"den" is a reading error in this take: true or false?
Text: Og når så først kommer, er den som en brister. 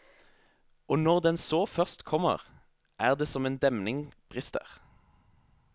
true